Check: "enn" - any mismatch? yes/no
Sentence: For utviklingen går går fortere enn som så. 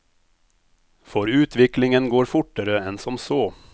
no